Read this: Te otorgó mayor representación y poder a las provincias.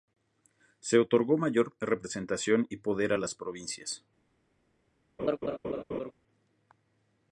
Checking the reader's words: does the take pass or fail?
fail